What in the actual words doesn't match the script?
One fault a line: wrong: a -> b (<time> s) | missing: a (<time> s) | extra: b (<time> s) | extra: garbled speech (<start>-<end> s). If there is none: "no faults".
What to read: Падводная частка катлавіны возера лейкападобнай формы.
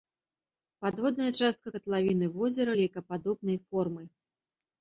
no faults